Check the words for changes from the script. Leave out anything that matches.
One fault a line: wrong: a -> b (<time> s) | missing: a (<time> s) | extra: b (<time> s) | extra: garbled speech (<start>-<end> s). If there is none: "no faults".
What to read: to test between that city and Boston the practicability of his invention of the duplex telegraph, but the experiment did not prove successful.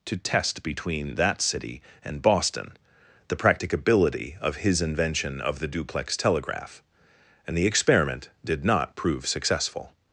wrong: but -> and (7.5 s)